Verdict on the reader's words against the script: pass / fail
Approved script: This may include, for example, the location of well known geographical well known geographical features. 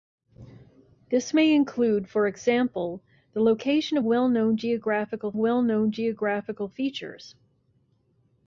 pass